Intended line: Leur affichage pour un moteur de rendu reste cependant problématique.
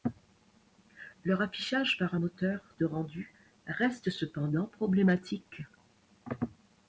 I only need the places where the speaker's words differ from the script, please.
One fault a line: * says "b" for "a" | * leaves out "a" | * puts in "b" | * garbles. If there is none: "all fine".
* says "par" for "pour"